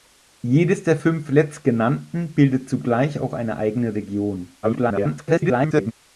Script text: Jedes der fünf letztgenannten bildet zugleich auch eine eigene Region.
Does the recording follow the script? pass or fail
fail